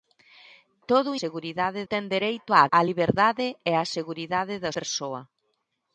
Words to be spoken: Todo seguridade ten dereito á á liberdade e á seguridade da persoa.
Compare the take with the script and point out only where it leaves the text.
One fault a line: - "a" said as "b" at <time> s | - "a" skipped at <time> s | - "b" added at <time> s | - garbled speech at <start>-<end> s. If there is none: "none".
none